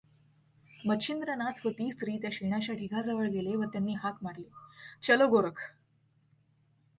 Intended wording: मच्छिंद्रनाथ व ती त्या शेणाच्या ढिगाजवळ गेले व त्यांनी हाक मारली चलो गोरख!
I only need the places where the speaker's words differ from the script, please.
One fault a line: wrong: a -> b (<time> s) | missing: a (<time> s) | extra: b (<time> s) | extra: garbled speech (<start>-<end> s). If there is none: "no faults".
extra: स्त्री (1.9 s)